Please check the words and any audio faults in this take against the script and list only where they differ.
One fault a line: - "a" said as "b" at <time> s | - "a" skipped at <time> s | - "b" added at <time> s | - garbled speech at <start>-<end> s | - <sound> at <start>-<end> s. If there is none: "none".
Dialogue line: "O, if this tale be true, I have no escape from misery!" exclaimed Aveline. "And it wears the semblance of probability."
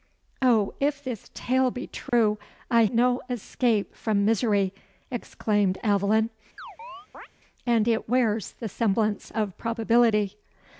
- dropout at 2.1-2.1 s
- "have" skipped at 2.9 s
- chirp at 6.6-7.3 s